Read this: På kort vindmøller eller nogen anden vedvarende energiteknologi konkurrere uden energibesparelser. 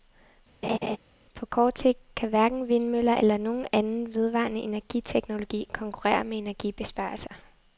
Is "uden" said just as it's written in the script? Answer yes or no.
no